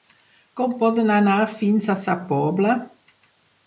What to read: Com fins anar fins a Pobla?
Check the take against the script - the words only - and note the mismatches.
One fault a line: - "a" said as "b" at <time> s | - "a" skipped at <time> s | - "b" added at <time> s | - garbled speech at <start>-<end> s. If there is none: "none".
- "fins" said as "podem" at 0.8 s
- "Sa" added at 2.1 s